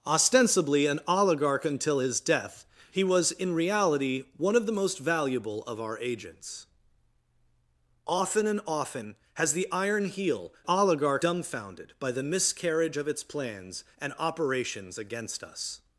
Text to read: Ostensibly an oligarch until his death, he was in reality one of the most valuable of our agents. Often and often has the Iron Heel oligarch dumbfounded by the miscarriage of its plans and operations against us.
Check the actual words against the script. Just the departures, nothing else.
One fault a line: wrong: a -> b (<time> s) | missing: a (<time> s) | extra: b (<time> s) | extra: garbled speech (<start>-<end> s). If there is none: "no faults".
no faults